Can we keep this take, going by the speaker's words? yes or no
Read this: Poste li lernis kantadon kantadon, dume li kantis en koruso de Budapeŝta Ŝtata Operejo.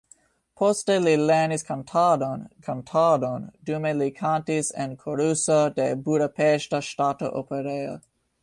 yes